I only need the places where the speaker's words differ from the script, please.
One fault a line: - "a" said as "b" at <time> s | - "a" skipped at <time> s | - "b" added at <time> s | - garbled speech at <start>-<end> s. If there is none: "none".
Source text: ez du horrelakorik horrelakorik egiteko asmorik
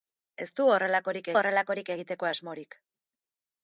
none